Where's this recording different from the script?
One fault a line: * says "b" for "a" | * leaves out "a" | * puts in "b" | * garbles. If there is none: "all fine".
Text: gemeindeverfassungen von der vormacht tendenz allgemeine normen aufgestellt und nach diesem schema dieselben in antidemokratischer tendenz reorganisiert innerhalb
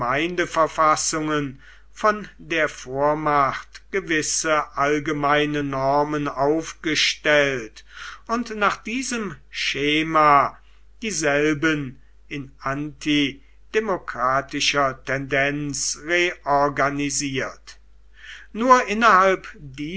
* says "gewisse" for "tendenz"
* puts in "nur"